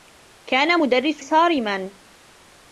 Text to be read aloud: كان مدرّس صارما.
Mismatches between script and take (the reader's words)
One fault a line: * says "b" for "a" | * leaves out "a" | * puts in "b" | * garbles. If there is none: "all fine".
all fine